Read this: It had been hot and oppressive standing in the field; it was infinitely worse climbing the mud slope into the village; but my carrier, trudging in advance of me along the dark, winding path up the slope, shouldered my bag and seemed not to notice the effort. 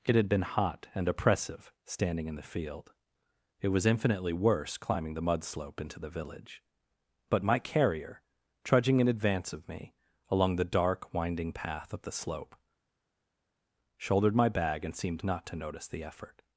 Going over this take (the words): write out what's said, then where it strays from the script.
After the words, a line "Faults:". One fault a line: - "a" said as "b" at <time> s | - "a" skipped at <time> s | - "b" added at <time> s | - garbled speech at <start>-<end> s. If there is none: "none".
It had been hot and oppressive standing in the field; it was infinitely worse climbing the mud slope into the village; but my carrier, trudging in advance of me along the dark, winding path up the slope, shouldered my bag and seemed not to notice the effort.
Faults:
none